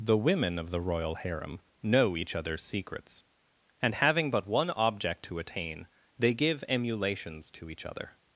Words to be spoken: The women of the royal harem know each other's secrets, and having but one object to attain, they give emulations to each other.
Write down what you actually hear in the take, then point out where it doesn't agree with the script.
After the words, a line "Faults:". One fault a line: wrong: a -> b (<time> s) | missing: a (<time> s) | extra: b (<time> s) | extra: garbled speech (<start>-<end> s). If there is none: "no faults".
The women of the royal harem know each other's secrets, and having but one object to attain, they give emulations to each other.
Faults:
no faults